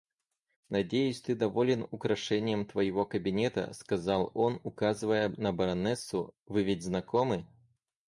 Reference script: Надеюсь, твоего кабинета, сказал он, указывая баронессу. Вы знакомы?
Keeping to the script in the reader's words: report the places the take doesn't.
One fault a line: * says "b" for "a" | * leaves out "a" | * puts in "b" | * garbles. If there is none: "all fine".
* puts in "ты доволен украшением"
* puts in "на"
* puts in "ведь"